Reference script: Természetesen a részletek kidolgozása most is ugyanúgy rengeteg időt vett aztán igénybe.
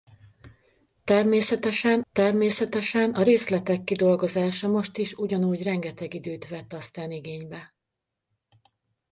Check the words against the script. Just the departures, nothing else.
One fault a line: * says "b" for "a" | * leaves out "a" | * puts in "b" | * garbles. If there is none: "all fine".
* puts in "természetesen"